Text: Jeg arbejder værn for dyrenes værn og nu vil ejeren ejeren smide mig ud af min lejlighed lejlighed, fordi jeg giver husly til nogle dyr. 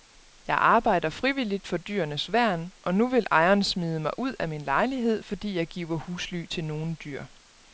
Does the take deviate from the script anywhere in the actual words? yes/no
yes